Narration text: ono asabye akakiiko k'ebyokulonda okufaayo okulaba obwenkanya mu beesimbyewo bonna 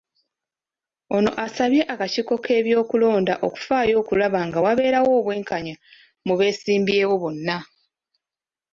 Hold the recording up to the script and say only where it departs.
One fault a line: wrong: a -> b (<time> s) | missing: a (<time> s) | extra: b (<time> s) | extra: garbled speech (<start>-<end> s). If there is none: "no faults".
extra: nga wabeerawo (4.5 s)